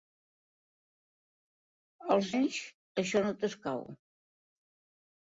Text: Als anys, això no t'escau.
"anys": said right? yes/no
yes